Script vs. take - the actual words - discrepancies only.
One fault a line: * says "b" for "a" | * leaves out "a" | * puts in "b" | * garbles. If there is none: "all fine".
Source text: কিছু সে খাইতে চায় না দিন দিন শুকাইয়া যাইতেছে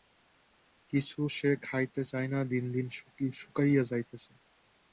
all fine